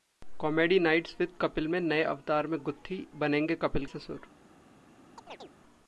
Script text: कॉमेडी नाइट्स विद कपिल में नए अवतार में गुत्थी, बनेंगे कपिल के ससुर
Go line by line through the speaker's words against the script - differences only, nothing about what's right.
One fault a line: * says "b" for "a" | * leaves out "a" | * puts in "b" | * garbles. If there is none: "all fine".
* leaves out "के"